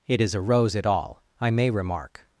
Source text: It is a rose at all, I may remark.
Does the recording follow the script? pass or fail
pass